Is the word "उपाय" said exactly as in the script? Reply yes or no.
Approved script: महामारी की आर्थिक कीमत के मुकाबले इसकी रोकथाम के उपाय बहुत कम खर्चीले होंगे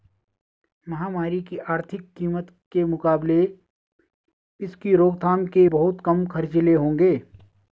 no